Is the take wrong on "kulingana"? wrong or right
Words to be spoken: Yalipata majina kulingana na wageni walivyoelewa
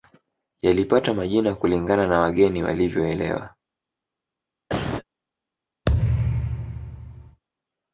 right